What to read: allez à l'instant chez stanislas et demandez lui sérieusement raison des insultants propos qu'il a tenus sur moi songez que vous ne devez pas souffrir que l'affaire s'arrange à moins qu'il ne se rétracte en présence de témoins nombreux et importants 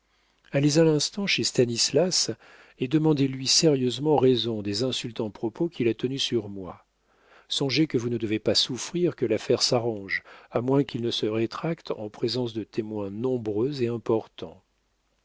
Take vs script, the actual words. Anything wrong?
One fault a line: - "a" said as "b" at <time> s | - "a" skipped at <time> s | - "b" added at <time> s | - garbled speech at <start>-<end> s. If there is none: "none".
none